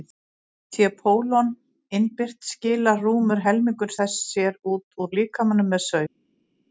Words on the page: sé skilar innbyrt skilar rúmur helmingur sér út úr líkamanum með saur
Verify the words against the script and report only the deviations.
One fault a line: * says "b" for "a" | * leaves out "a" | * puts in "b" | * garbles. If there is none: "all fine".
* says "pólon" for "skilar"
* puts in "þess"